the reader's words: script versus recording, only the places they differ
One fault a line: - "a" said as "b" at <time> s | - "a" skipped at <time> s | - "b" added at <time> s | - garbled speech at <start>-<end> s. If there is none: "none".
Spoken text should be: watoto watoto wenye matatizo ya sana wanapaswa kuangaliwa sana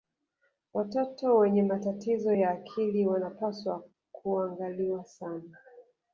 - "watoto" skipped at 1.4 s
- "sana" said as "akili" at 2.5 s